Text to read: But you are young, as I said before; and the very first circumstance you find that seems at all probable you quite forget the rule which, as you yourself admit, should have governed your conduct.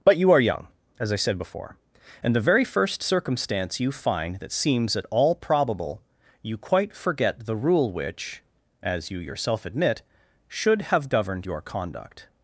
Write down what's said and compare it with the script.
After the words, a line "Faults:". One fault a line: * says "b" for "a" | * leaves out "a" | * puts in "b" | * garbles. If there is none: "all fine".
But you are young, as I said before; and the very first circumstance you find that seems at all probable you quite forget the rule which, as you yourself admit, should have governed your conduct.
Faults:
all fine